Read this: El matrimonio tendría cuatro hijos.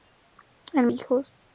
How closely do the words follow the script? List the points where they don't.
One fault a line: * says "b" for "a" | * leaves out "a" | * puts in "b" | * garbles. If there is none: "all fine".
* leaves out "matrimonio tendría cuatro"